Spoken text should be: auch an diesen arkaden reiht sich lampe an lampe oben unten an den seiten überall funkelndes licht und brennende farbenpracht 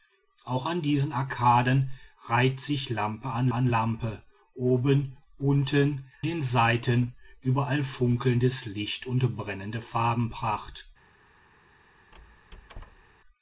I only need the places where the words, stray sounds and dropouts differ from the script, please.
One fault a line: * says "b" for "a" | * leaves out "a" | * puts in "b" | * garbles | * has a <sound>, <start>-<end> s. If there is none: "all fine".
* puts in "an"
* leaves out "an"
* has a squeak, 12.1-13.2 s